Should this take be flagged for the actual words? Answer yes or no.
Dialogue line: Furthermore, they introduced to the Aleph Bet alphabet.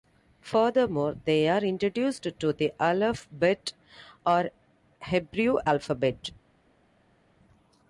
yes